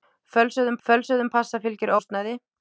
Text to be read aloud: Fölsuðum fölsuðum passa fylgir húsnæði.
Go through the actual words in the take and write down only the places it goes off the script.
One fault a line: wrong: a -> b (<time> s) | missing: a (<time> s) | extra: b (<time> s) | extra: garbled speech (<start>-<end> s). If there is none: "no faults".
no faults